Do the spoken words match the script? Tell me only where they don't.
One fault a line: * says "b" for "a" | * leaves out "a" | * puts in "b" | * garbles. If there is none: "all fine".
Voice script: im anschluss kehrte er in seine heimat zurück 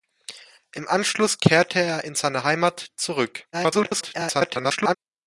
* garbles